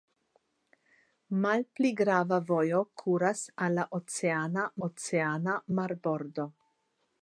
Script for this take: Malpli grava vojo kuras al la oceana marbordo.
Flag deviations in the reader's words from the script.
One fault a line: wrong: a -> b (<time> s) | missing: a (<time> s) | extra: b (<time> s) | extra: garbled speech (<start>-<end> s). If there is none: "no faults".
extra: oceana (4.9 s)